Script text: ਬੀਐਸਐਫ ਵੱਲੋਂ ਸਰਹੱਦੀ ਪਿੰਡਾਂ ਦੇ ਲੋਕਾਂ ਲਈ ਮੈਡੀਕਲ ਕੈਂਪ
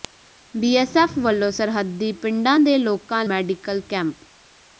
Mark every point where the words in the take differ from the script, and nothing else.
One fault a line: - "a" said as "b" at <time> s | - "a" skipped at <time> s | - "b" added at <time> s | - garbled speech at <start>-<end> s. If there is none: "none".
- "ਲਈ" skipped at 3.2 s